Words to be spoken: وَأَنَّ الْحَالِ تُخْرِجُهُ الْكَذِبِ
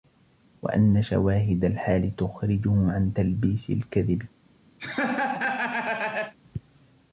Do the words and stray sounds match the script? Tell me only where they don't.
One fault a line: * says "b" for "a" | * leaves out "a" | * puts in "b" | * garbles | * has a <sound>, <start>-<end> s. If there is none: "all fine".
* puts in "شَوَاهِدَ"
* puts in "عَنْ تَلْبِيسِ"
* has a laugh, 4.8-6.3 s